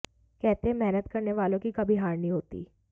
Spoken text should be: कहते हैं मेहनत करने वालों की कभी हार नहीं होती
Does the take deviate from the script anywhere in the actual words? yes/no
no